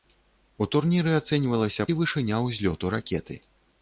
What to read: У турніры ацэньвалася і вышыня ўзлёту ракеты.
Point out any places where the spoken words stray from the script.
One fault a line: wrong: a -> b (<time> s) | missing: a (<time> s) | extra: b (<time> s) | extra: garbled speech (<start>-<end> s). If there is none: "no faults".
no faults